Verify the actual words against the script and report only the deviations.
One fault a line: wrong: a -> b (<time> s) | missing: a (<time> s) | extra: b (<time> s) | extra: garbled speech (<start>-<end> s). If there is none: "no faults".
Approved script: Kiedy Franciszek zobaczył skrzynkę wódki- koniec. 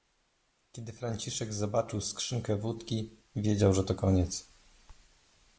extra: wiedział że to (3.4 s)